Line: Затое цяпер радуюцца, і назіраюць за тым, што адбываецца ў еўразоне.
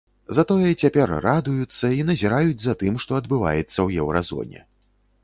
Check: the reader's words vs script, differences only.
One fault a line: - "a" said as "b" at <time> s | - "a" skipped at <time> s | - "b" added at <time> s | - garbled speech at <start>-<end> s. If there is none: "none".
none